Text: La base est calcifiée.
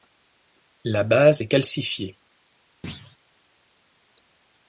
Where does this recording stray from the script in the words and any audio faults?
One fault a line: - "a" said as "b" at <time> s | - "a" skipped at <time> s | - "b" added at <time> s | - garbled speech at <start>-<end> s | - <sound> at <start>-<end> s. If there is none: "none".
- thud at 2.8-3.2 s